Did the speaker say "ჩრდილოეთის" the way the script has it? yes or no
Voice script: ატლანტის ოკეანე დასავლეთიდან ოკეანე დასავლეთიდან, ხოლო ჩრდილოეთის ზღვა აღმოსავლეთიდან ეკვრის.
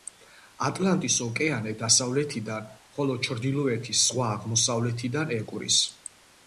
yes